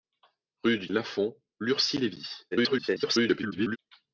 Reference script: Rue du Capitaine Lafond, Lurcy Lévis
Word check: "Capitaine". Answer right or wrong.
wrong